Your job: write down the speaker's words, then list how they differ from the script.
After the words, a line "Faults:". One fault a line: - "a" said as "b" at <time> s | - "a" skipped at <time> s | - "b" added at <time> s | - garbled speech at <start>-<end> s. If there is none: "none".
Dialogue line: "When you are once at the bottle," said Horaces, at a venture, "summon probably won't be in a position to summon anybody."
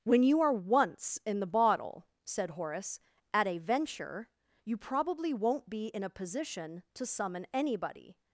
"When you are once in the bottle," said Horace, at a venture, "you probably won't be in a position to summon anybody."
Faults:
- "at" said as "in" at 1.2 s
- "Horaces" said as "Horace" at 2.5 s
- "summon" said as "you" at 4.7 s